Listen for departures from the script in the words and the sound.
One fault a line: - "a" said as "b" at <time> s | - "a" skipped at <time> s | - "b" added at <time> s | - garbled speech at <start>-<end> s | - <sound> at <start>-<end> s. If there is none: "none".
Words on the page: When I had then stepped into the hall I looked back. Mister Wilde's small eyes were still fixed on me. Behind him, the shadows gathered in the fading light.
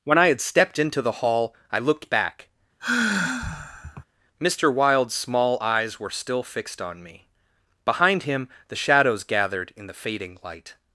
- "then" skipped at 0.4 s
- sigh at 2.8-4.0 s